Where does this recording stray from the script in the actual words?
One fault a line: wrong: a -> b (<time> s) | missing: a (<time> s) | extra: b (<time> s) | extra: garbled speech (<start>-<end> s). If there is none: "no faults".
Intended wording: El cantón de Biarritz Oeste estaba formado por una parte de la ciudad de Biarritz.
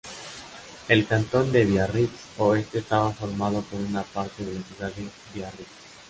no faults